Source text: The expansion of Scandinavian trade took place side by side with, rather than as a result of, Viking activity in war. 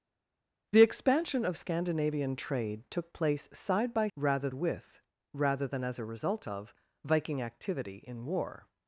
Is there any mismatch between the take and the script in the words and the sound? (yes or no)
yes